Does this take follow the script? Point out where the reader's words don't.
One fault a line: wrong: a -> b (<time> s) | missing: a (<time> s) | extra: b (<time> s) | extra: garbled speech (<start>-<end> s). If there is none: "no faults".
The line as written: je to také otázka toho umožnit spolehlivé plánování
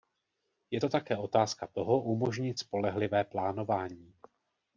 no faults